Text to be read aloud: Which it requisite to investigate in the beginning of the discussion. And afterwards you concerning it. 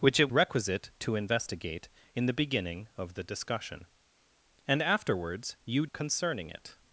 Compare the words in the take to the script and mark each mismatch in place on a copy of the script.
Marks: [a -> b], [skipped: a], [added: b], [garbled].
Which it requisite to investigate in the beginning of the discussion. And afterwards you concerning it.